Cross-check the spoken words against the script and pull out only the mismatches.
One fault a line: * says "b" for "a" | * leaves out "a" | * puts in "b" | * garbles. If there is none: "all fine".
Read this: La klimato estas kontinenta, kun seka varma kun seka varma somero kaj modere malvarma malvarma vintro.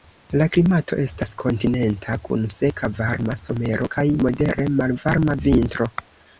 * leaves out "kun seka varma"
* leaves out "malvarma"